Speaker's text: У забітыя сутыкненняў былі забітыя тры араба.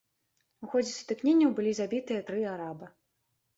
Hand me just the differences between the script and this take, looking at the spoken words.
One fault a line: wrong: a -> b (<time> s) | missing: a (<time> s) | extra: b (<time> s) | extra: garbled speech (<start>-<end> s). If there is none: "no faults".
wrong: забітыя -> ходзе (0.7 s)